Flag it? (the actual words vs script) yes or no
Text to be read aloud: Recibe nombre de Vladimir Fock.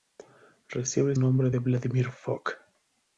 no